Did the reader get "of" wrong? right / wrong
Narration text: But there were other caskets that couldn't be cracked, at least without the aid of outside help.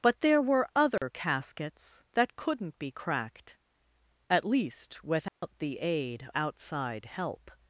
wrong